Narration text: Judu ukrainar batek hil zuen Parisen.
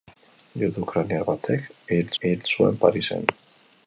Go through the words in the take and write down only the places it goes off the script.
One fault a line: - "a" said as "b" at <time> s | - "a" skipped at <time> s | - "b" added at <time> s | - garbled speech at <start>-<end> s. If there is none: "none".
- "hil" added at 2.2 s